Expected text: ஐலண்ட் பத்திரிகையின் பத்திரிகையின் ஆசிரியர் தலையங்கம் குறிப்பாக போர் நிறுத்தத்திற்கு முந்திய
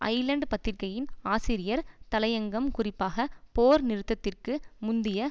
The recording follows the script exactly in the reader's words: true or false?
false